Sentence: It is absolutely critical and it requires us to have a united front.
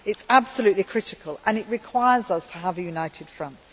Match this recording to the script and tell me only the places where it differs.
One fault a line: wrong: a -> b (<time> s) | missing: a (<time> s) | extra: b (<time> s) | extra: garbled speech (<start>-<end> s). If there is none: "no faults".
no faults